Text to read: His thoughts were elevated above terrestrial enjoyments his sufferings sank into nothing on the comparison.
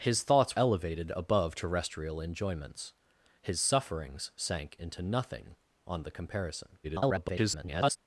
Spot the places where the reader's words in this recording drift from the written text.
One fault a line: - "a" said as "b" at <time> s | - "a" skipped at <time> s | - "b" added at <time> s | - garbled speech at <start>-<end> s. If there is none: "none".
- "were" skipped at 0.6 s
- garbled speech at 6.8-8.0 s